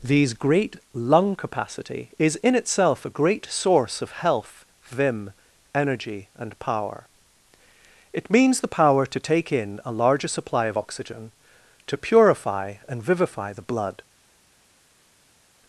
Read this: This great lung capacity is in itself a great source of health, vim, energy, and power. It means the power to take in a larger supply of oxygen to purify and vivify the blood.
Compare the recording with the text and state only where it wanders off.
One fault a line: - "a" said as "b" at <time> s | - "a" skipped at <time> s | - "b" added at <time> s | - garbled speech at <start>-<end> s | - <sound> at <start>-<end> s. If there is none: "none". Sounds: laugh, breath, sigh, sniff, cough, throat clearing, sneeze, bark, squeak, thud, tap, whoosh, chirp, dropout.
- "This" said as "These" at 0.0 s